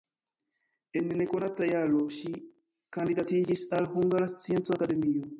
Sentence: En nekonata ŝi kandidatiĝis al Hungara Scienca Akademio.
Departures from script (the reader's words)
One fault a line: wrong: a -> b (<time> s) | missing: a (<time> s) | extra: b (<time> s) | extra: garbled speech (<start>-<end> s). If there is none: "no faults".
extra: jaro (1.7 s)